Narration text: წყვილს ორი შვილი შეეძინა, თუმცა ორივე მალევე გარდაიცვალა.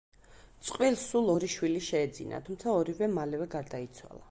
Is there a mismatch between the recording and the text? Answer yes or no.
yes